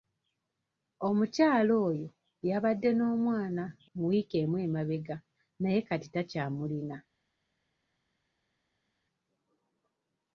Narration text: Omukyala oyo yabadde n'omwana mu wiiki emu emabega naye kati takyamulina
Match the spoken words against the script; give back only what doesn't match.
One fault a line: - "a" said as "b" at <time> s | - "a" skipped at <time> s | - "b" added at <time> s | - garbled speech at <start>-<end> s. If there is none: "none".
none